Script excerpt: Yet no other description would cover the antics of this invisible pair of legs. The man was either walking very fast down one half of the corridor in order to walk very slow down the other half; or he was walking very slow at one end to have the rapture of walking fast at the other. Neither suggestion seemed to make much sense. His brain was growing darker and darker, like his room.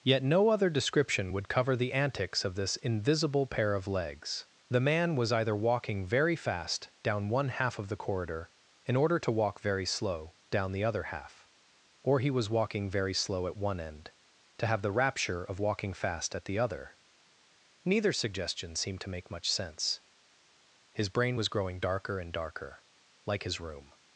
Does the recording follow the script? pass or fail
pass